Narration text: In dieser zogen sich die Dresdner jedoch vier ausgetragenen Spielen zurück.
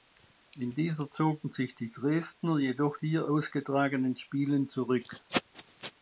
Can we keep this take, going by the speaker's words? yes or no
yes